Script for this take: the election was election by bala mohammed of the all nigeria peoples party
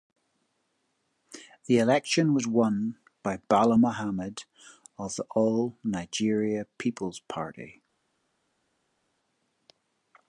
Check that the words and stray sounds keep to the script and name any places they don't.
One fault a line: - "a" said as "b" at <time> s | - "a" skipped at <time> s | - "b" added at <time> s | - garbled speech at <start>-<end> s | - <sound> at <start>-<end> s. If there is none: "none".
- "election" said as "won" at 2.5 s